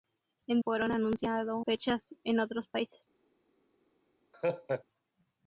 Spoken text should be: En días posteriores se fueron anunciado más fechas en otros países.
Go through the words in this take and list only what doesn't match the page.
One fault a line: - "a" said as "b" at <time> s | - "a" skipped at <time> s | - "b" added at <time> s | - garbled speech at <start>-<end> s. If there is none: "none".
- "días posteriores se" skipped at 0.6 s
- "más" skipped at 1.6 s